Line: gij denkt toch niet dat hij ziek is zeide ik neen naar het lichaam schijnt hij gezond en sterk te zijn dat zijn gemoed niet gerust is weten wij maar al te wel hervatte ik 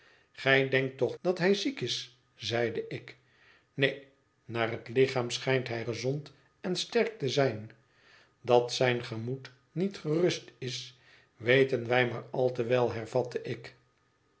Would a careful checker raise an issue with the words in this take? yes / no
yes